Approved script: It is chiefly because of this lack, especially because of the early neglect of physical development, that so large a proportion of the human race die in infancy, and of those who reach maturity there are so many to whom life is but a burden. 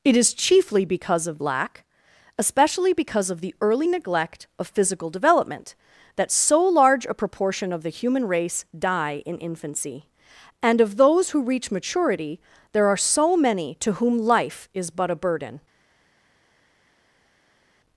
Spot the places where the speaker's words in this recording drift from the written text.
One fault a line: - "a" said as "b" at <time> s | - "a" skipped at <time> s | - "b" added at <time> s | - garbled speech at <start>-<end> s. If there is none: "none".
- "this" skipped at 1.4 s